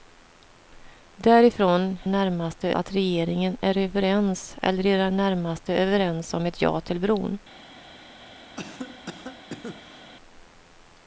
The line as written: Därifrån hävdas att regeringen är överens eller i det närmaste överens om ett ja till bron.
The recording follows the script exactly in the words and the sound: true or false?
false